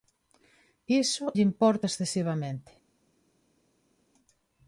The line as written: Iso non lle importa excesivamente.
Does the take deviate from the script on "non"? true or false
true